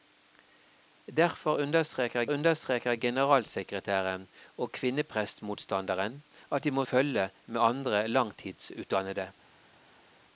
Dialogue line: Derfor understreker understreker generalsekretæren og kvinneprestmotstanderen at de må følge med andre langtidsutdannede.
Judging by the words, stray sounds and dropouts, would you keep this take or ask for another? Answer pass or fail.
pass